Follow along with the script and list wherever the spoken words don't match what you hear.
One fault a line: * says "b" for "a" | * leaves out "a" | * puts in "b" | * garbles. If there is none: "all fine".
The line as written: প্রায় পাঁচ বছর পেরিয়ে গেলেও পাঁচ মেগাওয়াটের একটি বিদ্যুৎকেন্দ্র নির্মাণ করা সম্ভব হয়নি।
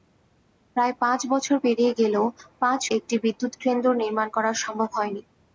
* leaves out "মেগাওয়াটের"